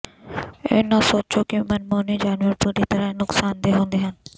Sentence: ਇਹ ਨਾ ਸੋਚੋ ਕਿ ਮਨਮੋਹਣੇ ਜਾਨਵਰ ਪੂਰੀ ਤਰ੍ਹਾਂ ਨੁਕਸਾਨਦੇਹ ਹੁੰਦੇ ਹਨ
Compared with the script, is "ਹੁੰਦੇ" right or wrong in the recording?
right